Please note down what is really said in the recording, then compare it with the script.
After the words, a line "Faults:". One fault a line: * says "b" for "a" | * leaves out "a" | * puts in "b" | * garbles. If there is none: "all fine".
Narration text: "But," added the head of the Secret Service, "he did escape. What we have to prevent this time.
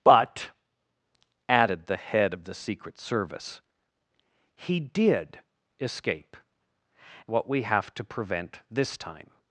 "But," added the head of the Secret Service, "he did escape. What we have to prevent this time.
Faults:
all fine